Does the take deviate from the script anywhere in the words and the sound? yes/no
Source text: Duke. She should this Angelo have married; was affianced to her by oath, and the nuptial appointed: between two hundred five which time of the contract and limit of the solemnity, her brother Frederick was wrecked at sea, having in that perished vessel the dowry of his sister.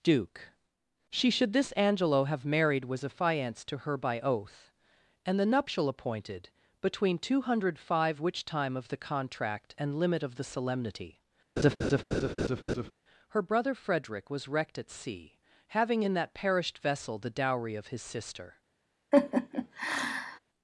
yes